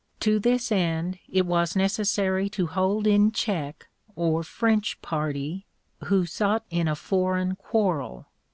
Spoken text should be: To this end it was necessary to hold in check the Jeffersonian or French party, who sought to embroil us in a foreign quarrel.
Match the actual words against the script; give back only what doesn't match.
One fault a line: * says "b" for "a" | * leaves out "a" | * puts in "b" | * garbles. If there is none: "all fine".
* leaves out "the Jeffersonian"
* leaves out "to embroil us"